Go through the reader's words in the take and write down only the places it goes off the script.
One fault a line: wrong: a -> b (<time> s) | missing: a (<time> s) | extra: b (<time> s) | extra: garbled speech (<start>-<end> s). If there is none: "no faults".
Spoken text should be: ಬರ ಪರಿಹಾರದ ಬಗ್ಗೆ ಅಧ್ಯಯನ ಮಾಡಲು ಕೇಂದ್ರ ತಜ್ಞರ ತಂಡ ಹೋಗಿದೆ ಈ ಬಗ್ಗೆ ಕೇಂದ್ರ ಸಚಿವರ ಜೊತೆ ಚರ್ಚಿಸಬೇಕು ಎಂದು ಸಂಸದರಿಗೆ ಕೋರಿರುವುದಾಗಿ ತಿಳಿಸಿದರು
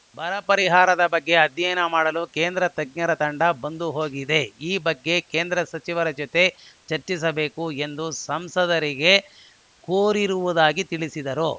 extra: ಬಂದು (3.6 s)